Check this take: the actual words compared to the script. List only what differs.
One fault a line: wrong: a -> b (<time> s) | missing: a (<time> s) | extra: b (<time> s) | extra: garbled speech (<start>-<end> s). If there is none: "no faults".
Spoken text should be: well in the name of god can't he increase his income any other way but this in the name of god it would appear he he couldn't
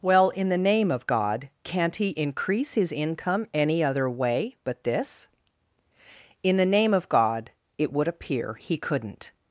missing: he (8.8 s)